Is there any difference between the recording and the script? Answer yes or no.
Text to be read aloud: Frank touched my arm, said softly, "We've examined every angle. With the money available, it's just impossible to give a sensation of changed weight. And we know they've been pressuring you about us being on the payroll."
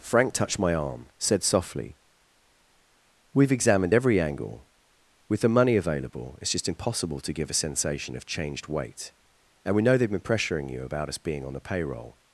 no